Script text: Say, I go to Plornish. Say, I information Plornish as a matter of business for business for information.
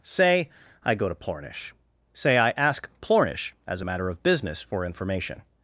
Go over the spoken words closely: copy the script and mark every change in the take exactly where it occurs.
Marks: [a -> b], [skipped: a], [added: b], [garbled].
Say, I go to Plornish. Say, I [information -> ask] Plornish as a matter of business for [skipped: business for] information.